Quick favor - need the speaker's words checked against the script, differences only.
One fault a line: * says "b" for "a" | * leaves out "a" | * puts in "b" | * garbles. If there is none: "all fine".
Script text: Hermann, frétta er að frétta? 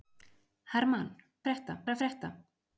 all fine